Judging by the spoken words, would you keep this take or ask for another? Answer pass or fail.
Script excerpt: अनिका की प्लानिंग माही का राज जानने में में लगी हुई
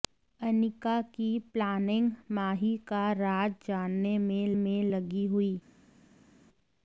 pass